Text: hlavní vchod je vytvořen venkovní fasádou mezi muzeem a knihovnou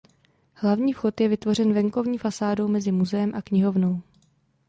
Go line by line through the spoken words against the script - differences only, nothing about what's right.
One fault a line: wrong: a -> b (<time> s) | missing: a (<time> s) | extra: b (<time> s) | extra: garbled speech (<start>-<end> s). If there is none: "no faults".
no faults